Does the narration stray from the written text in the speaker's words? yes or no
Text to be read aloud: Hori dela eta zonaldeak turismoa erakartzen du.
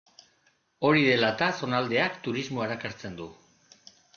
no